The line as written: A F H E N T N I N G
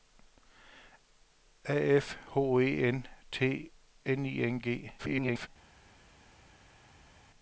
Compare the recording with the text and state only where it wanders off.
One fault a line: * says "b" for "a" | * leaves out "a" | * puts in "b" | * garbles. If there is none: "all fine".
* garbles